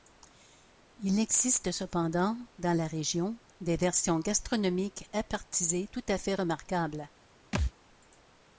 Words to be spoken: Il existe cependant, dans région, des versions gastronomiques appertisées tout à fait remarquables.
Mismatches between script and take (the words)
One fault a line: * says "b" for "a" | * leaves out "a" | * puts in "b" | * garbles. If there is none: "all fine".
* puts in "la"